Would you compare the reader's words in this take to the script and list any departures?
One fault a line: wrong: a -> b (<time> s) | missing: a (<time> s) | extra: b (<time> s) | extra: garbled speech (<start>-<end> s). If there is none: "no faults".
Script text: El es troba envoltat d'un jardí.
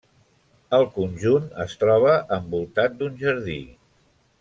extra: conjunt (0.9 s)